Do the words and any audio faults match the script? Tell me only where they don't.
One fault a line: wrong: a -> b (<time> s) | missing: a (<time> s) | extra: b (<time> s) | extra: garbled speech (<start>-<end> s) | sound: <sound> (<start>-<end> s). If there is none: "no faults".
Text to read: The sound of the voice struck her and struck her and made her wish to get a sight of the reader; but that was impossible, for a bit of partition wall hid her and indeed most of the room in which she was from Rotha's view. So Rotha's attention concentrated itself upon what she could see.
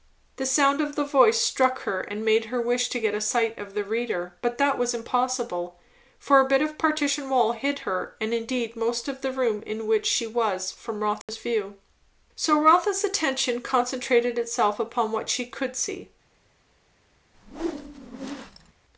missing: struck her and (2.2 s)
sound: dropout (11.2-11.3 s)
sound: whoosh (17.3-18.7 s)